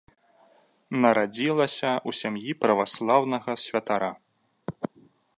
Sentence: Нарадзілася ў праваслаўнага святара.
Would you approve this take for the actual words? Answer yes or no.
no